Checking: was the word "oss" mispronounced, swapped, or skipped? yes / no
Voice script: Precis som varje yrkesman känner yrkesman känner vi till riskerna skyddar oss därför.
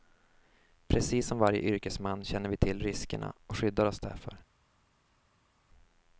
no